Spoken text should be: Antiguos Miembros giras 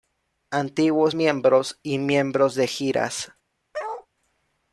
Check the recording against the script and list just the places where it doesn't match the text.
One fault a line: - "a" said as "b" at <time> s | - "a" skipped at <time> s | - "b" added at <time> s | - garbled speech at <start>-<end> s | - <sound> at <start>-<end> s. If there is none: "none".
- "y Miembros de" added at 1.8 s
- bark at 3.7-4.1 s